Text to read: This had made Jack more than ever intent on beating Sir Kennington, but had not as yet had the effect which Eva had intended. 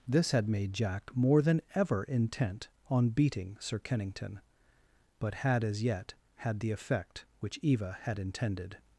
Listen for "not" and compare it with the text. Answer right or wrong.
wrong